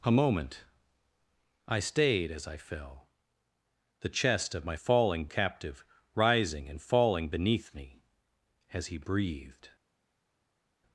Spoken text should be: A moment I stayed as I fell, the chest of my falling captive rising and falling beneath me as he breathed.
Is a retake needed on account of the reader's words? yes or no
no